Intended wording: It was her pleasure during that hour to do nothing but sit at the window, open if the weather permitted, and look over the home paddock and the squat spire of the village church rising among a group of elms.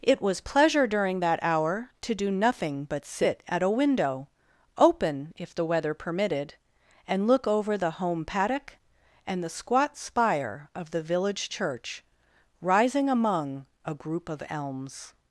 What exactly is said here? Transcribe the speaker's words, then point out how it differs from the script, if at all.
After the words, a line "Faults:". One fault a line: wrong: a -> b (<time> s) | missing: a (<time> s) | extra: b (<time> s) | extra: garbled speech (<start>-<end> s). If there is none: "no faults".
It was pleasure during that hour to do nothing but sit at a window, open if the weather permitted, and look over the home paddock and the squat spire of the village church rising among a group of elms.
Faults:
missing: her (0.4 s)
wrong: the -> a (3.6 s)